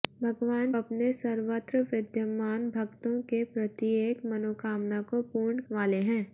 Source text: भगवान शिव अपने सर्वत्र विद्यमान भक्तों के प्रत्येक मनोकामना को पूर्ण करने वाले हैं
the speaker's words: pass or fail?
fail